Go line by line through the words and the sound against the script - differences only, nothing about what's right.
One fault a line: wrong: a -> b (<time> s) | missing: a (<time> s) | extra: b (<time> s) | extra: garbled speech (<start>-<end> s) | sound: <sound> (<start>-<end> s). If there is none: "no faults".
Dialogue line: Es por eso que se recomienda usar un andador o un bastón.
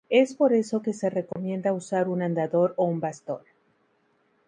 sound: dropout (1.3-1.4 s)